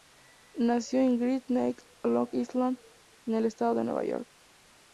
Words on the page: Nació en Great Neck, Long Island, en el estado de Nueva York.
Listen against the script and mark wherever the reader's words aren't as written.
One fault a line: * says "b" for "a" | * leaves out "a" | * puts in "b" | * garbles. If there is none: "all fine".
all fine